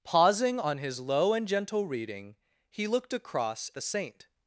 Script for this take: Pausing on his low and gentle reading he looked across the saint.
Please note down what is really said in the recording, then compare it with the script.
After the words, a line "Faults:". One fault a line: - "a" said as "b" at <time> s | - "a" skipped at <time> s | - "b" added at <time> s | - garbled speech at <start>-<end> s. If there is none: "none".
Pausing on his low and gentle reading he looked across the saint.
Faults:
none